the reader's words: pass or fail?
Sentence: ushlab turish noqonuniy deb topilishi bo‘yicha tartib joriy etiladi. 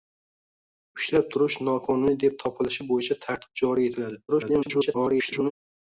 fail